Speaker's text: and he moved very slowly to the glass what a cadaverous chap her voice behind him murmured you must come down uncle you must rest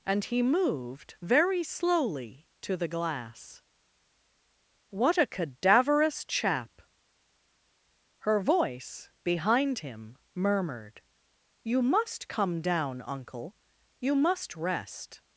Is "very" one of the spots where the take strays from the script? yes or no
no